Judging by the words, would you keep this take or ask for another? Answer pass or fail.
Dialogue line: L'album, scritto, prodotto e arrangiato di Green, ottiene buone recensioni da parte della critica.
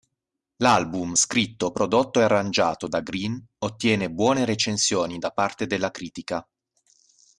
fail